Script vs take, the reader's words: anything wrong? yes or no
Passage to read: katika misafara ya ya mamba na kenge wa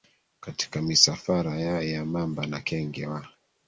no